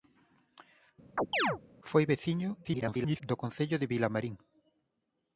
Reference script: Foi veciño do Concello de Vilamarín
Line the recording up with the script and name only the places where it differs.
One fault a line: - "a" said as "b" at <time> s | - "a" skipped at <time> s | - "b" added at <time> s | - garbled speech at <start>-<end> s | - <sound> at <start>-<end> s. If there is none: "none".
- chirp at 1.2-1.6 s
- garbled speech at 2.6-3.2 s